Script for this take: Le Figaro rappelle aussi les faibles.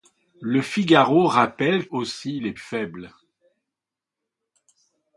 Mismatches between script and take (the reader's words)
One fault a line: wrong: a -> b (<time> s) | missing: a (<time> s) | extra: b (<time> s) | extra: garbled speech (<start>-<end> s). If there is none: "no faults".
no faults